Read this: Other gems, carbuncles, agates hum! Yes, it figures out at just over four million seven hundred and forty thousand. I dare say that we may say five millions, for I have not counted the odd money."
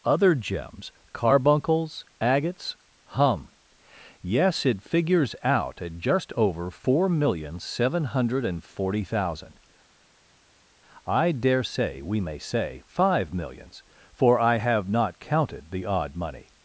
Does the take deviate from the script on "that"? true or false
true